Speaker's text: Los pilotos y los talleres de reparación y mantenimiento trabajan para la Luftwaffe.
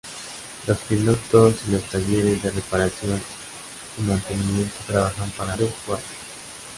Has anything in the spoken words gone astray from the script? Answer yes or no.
yes